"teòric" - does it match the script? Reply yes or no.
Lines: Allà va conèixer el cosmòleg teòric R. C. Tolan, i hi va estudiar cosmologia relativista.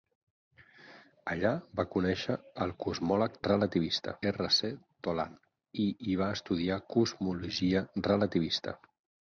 no